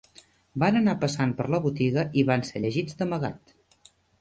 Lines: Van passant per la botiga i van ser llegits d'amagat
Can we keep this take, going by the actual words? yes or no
no